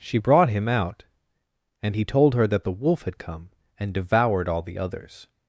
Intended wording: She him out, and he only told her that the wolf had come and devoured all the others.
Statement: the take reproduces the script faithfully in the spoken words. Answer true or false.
false